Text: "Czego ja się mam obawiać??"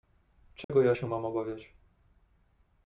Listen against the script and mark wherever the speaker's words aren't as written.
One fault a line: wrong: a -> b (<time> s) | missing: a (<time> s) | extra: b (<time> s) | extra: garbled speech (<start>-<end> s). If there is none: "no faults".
no faults